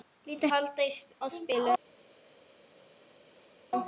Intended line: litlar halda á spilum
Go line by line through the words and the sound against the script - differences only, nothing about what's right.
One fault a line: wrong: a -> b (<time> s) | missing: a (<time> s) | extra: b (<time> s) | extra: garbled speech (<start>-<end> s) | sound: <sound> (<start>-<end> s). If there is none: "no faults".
no faults